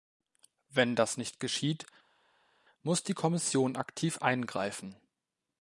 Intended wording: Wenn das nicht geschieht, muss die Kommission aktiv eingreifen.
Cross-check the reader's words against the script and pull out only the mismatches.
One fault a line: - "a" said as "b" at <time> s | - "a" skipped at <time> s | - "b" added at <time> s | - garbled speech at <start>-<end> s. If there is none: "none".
none